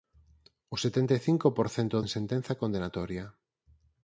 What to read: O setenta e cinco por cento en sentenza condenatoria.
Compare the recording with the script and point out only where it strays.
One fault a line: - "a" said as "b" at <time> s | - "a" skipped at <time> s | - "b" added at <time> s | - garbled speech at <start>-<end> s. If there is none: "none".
none